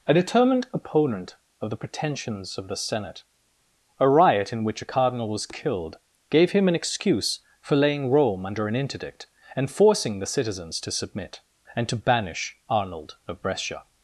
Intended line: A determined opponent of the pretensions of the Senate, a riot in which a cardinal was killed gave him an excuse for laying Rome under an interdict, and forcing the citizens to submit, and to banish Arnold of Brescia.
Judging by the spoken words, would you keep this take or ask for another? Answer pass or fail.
pass